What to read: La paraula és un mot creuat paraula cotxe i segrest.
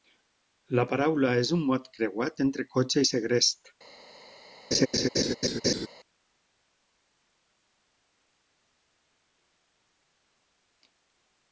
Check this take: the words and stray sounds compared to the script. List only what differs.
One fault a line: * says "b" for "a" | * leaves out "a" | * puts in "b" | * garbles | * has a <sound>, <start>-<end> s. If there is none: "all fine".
* says "entre" for "paraula"
* has a laugh, 4.7-5.9 s